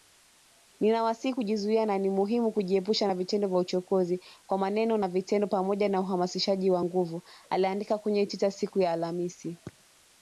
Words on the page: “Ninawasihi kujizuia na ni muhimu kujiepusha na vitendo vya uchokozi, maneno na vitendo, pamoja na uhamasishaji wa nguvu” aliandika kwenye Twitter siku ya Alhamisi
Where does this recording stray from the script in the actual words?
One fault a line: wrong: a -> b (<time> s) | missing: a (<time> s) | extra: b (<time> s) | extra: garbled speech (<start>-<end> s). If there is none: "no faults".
extra: kwa (4.5 s)